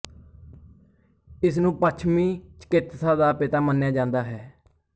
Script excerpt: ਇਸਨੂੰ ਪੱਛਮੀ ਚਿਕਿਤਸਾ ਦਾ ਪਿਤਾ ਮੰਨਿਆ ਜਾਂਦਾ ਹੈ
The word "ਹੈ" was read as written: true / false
true